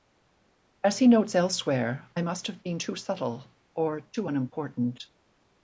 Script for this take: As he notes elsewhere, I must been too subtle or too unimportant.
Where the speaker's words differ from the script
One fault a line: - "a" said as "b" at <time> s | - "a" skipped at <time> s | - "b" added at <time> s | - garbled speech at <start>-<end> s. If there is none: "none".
- "have" added at 2.5 s